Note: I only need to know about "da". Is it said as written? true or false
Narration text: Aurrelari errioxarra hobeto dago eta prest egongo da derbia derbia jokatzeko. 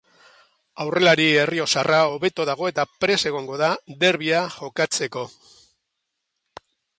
true